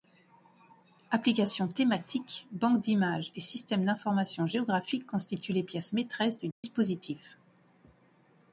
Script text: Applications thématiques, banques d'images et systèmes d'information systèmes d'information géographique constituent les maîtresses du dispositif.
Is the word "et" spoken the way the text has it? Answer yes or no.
yes